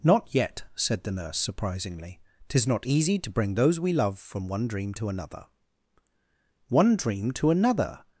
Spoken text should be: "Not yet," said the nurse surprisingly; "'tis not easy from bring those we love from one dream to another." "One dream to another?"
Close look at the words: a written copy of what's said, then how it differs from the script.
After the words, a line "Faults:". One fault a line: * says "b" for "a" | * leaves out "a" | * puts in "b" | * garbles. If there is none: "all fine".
"Not yet," said the nurse surprisingly; "'tis not easy to bring those we love from one dream to another." "One dream to another?"
Faults:
* says "to" for "from"